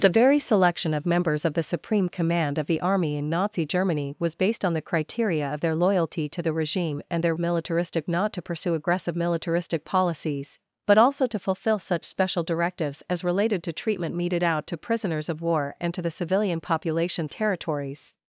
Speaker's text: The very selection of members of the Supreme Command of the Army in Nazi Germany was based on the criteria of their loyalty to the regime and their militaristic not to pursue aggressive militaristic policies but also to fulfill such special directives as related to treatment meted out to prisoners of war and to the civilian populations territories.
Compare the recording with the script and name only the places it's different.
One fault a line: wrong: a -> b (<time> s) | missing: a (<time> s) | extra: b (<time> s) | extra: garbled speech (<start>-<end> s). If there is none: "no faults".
no faults